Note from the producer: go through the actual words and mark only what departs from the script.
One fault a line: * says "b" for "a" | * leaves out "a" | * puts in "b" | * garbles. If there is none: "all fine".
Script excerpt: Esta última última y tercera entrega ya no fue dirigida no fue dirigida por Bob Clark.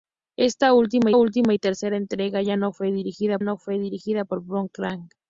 all fine